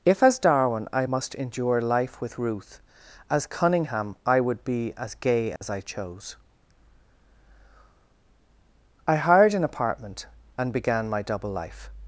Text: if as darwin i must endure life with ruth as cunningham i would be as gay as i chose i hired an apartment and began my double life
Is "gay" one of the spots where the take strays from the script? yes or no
no